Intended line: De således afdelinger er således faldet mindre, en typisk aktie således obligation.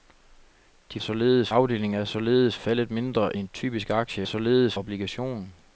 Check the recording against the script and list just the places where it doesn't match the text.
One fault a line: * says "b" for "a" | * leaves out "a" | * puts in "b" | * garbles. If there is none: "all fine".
all fine